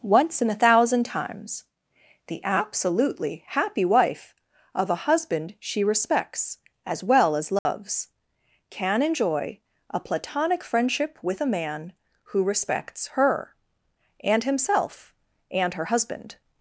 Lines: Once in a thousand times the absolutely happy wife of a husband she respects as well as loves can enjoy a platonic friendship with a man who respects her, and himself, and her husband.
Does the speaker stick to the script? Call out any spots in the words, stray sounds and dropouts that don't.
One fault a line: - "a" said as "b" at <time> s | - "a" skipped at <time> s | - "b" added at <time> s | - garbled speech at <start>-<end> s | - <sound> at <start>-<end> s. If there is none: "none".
- dropout at 7.6-7.7 s